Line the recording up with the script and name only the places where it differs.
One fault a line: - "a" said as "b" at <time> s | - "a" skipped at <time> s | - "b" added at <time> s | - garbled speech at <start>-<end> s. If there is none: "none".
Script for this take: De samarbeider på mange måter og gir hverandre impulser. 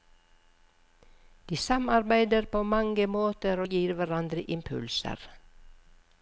none